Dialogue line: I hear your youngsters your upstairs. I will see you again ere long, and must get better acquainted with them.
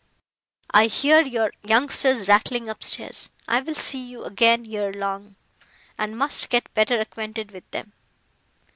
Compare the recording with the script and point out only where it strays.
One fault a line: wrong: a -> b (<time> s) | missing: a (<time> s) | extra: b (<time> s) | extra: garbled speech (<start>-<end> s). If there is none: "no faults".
wrong: your -> rattling (2.3 s)